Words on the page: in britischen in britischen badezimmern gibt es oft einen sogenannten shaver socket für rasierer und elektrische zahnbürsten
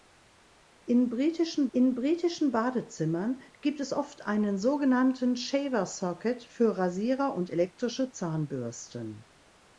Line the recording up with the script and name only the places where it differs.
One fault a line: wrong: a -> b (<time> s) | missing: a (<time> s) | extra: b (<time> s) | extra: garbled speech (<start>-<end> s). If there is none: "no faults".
no faults